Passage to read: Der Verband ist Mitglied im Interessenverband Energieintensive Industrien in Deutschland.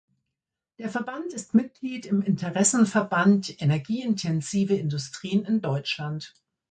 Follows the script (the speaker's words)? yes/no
yes